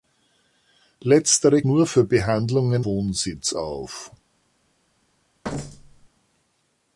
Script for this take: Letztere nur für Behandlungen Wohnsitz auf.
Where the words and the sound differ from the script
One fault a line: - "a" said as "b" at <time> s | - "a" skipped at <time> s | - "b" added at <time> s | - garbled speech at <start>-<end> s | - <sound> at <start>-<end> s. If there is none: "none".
- thud at 5.4-6.1 s